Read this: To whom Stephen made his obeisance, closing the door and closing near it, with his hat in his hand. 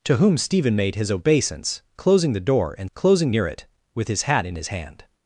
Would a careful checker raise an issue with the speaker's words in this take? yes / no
no